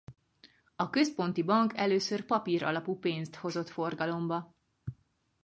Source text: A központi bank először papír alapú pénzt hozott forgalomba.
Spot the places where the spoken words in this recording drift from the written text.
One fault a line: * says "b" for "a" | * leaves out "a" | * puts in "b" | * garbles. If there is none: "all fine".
all fine